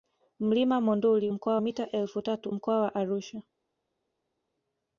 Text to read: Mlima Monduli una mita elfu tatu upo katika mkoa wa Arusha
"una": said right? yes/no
no